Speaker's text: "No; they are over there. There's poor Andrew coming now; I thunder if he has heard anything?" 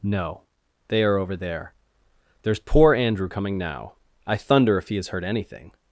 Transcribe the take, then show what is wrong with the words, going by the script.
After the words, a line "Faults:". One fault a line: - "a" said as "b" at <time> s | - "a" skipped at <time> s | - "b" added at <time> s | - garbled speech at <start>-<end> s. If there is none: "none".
"No; they are over there. There's poor Andrew coming now; I thunder if he has heard anything?"
Faults:
none